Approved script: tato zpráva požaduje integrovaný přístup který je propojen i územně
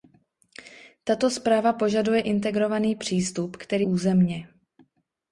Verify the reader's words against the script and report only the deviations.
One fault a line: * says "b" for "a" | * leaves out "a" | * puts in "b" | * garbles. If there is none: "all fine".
* leaves out "je propojen i"